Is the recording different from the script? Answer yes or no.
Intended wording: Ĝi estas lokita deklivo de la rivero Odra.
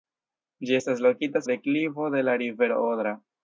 no